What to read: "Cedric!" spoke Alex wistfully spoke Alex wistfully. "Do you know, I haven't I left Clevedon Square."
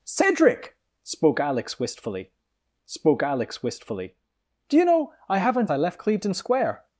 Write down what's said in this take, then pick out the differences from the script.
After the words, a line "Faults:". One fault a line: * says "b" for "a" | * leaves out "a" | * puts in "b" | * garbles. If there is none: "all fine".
"Cedric!" spoke Alex wistfully spoke Alex wistfully. "Do you know, I haven't I left Clevedon Square."
Faults:
all fine